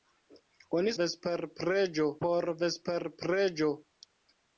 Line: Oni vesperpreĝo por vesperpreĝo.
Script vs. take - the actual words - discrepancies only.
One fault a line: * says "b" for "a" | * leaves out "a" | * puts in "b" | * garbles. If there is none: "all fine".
all fine